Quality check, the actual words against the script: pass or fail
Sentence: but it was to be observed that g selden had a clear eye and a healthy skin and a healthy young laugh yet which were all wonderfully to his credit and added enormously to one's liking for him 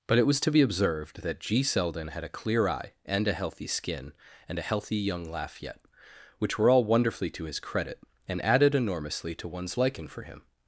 pass